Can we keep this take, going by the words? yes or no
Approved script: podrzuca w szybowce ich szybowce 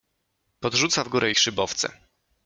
no